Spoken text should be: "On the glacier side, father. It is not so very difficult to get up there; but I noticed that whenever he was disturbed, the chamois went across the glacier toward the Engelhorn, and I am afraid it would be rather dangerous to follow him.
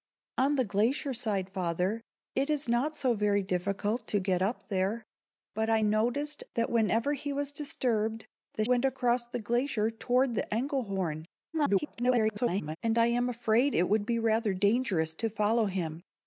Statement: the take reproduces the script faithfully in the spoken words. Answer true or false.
false